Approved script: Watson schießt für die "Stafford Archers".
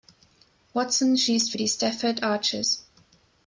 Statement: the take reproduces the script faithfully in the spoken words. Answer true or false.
true